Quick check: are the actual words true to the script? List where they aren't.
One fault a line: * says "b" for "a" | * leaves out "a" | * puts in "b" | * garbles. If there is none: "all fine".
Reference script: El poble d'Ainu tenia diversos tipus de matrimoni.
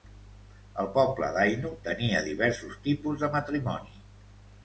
all fine